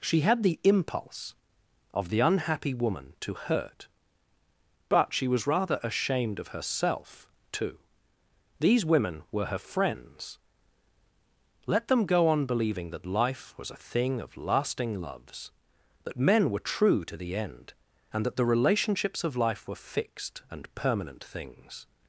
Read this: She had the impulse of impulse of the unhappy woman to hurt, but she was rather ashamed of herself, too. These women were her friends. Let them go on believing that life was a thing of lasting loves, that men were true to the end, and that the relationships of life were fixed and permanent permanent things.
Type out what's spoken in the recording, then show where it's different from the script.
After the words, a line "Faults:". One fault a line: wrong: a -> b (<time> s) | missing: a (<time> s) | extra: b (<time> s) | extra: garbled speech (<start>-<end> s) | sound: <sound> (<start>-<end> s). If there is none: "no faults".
She had the impulse of the unhappy woman to hurt, but she was rather ashamed of herself, too. These women were her friends. Let them go on believing that life was a thing of lasting loves, that men were true to the end, and that the relationships of life were fixed and permanent things.
Faults:
missing: impulse of (2.1 s)
missing: permanent (21.2 s)